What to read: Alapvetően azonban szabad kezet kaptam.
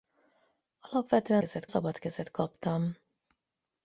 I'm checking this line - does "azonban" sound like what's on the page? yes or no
no